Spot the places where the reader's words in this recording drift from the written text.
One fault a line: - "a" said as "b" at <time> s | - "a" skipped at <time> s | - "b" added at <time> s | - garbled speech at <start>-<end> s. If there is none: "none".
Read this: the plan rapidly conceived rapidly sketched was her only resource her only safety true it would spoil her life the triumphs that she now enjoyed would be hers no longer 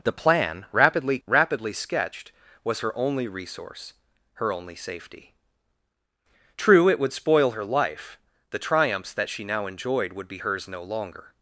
- "conceived" skipped at 1.2 s